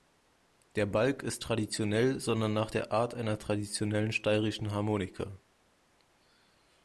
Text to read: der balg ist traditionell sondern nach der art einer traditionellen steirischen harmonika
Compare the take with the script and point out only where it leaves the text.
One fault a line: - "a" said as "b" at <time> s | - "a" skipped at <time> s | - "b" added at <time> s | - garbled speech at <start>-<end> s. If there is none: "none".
none